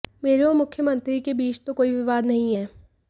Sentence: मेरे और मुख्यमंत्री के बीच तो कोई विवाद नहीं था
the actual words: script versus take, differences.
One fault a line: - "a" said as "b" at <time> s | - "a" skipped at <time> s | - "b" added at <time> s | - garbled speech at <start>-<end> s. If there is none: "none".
- "था" said as "है" at 2.5 s